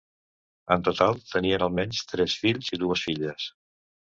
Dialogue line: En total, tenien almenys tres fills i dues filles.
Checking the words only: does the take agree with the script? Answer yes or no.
yes